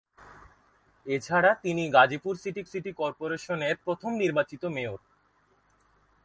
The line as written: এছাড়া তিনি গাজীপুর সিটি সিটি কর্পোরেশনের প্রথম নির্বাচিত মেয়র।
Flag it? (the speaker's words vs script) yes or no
no